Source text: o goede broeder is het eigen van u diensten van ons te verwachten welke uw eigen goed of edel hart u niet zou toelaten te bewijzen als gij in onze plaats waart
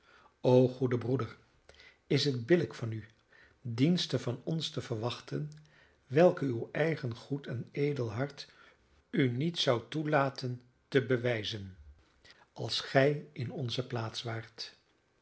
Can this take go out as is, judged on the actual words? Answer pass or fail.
fail